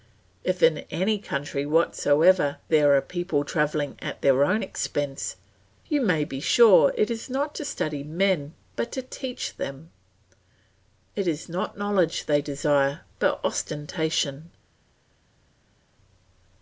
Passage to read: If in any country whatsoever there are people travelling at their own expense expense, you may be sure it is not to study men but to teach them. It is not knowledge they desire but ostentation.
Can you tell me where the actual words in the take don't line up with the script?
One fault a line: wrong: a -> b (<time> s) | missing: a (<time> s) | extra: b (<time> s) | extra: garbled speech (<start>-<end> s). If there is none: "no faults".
missing: expense (5.3 s)